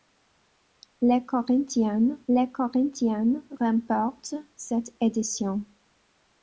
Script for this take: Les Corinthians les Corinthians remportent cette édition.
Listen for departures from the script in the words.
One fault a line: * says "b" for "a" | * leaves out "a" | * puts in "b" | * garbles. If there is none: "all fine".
all fine